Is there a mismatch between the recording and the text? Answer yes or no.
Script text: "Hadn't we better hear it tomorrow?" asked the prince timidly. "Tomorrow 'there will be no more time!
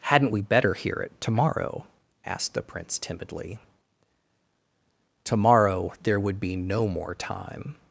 yes